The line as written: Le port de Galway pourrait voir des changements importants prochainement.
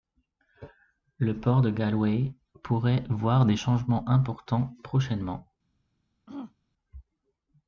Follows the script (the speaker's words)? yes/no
yes